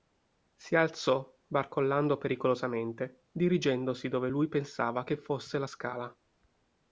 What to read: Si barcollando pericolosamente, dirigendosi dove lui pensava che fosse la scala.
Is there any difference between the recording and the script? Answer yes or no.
yes